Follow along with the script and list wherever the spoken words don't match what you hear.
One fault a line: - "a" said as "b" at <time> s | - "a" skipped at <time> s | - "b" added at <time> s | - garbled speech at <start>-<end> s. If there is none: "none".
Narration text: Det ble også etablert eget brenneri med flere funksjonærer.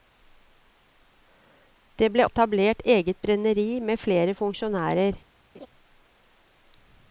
- "også" skipped at 2.2 s